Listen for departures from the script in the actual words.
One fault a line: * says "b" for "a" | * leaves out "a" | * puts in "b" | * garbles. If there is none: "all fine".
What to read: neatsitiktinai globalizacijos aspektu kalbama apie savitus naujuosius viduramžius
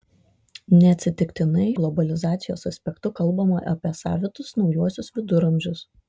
all fine